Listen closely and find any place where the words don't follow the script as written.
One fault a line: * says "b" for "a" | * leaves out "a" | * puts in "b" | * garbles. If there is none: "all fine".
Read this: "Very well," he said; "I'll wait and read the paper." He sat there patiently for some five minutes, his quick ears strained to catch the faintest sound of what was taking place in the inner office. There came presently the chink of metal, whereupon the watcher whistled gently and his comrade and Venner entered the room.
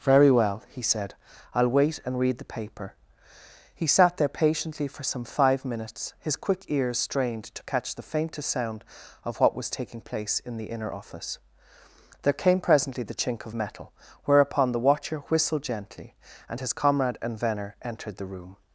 all fine